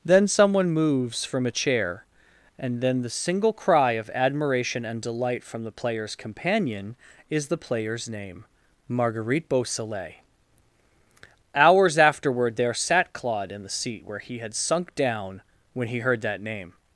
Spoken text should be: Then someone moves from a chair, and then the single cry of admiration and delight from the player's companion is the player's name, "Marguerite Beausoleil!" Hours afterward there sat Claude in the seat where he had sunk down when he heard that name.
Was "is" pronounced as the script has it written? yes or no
yes